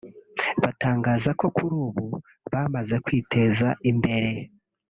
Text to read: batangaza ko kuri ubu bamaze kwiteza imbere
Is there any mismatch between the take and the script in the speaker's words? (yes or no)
no